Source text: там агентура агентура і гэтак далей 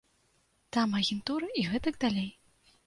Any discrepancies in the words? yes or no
yes